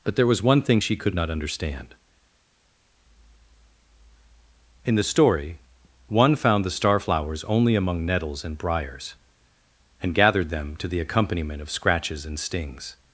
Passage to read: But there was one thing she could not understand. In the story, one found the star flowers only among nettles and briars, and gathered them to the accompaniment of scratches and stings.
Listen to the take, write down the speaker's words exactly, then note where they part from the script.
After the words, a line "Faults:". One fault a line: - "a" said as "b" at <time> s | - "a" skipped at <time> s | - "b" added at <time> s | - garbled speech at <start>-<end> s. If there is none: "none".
But there was one thing she could not understand. In the story, one found the star flowers only among nettles and briars, and gathered them to the accompaniment of scratches and stings.
Faults:
none